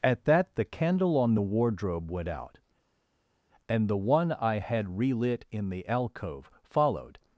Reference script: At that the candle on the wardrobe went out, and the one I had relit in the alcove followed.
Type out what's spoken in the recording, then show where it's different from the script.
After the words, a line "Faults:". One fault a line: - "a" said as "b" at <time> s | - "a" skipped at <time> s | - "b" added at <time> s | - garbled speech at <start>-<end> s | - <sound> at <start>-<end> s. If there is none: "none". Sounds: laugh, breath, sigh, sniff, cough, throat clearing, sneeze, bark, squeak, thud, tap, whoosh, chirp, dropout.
At that the candle on the wardrobe went out, and the one I had relit in the alcove followed.
Faults:
none